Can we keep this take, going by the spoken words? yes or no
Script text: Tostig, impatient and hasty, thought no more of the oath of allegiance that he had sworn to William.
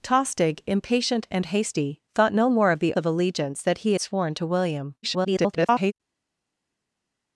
no